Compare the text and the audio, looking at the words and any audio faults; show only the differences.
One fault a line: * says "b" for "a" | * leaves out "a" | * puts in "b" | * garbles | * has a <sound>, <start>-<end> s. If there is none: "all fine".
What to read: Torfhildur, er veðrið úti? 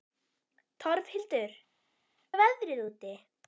all fine